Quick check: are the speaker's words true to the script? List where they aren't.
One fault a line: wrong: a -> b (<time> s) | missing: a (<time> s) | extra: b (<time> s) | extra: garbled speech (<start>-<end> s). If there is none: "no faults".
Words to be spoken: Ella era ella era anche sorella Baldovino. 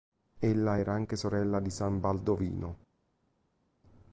wrong: ella era anche sorella -> anche sorella di san (0.9 s)